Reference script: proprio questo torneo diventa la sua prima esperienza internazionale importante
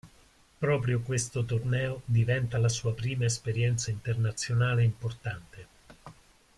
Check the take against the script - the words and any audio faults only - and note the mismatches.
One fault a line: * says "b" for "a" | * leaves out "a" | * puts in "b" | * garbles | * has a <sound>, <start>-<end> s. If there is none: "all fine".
all fine